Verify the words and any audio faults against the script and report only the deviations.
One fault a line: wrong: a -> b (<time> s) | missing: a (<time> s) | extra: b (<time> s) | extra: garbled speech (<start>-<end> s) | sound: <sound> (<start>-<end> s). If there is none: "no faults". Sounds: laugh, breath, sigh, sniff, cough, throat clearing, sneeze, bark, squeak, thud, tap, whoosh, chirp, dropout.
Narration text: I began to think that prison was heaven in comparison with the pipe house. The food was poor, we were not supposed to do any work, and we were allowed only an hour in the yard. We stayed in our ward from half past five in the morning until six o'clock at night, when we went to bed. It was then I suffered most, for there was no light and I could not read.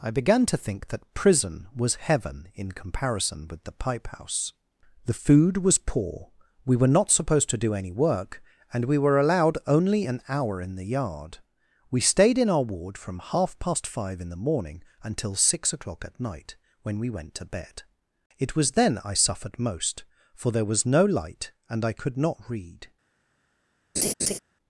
sound: laugh (24.0-24.4 s)